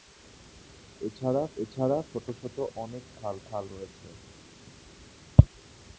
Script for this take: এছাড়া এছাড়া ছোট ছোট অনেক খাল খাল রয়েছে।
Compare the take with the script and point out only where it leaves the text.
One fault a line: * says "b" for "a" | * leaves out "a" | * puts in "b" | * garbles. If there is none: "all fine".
all fine